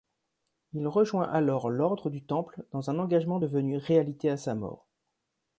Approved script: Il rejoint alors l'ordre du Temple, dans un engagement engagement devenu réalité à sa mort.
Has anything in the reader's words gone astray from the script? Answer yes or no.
yes